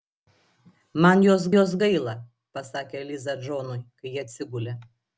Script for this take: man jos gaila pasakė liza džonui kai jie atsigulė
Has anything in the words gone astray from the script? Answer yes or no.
yes